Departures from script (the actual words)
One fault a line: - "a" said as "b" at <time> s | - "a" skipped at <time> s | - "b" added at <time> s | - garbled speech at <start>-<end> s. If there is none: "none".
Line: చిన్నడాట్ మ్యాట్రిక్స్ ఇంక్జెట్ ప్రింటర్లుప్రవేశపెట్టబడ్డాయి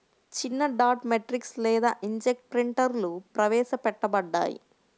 - "లేదా" added at 1.6 s